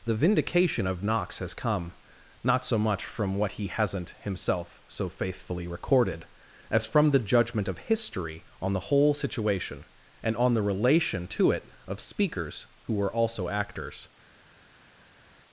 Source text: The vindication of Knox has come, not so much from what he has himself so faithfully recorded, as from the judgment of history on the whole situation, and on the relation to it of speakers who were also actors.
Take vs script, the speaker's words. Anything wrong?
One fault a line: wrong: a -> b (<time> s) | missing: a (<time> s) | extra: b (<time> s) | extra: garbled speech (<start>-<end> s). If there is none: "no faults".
wrong: has -> hasn't (3.7 s)